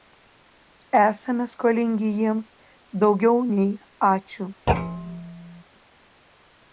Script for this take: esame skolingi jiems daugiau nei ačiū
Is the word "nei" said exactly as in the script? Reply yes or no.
yes